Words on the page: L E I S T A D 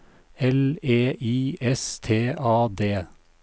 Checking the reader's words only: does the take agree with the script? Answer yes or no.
yes